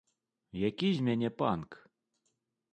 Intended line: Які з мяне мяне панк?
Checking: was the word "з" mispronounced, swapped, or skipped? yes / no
no